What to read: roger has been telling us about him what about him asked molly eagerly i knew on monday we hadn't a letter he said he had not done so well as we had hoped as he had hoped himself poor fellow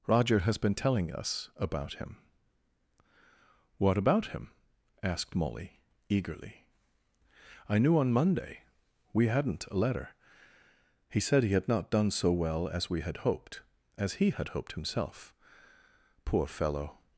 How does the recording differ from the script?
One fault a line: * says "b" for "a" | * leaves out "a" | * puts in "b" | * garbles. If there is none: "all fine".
all fine